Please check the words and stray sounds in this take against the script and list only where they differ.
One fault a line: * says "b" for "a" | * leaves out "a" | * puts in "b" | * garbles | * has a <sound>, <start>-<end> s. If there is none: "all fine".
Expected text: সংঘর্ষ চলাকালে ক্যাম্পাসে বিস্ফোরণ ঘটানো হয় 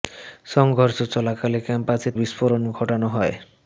all fine